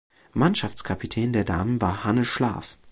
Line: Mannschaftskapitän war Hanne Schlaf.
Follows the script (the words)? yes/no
no